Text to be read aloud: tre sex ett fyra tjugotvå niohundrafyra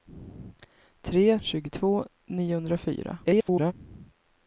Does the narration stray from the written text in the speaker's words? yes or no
yes